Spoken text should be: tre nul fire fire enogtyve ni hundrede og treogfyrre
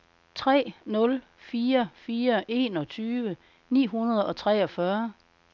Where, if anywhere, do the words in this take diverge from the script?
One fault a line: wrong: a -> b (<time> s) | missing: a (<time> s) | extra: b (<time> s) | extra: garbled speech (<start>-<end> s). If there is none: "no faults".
no faults